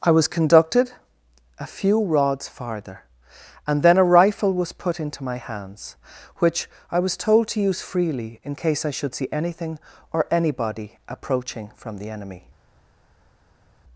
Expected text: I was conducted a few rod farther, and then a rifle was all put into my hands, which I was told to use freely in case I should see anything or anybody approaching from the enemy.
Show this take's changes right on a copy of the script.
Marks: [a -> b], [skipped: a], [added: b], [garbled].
I was conducted a few [rod -> rods] farther, and then a rifle was [skipped: all] put into my hands, which I was told to use freely in case I should see anything or anybody approaching from the enemy.